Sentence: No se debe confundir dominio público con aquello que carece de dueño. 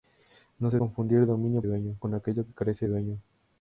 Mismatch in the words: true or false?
true